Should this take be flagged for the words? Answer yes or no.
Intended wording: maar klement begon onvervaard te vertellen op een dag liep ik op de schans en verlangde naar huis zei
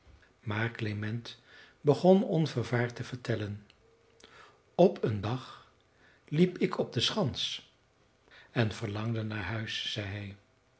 no